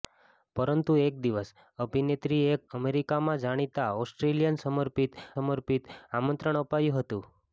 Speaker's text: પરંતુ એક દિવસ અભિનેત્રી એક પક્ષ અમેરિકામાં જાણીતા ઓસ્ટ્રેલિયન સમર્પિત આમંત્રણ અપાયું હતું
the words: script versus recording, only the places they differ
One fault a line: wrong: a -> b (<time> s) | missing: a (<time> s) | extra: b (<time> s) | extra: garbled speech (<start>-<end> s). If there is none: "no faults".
missing: પક્ષ (2.6 s)
extra: સમર્પિત (5.3 s)